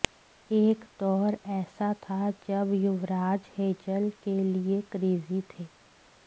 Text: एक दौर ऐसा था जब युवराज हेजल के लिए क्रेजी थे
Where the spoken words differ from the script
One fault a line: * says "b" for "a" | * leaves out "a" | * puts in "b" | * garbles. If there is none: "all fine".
all fine